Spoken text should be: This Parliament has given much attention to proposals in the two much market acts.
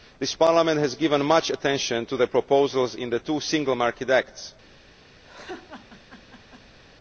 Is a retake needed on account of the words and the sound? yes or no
yes